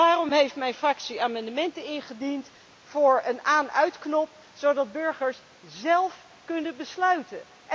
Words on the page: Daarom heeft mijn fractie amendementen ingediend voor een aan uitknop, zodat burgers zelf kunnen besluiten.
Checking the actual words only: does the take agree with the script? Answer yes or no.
yes